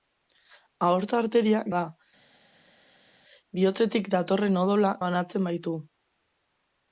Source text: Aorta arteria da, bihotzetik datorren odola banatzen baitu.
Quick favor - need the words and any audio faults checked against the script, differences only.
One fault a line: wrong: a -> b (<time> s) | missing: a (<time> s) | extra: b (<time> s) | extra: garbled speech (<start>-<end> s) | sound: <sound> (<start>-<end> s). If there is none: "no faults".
no faults